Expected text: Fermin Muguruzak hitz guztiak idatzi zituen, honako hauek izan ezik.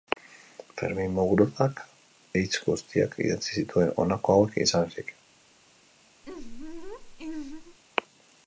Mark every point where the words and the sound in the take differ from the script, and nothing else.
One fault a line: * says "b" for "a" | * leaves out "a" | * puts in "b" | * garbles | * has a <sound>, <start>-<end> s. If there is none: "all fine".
* has a laugh, 6.2-7.8 s